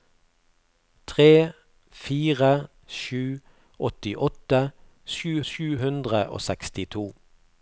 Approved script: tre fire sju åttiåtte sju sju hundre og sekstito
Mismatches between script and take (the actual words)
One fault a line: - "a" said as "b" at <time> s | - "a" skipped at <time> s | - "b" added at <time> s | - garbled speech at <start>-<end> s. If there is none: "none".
none